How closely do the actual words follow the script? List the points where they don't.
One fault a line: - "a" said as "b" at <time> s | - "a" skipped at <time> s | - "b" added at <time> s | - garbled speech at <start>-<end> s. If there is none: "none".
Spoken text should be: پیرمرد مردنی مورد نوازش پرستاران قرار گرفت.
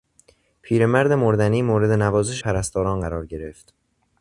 none